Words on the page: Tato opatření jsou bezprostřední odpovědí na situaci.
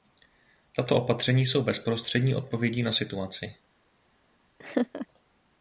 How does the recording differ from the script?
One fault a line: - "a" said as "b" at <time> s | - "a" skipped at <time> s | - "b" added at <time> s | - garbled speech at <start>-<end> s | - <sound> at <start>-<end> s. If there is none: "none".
- laugh at 4.6-5.1 s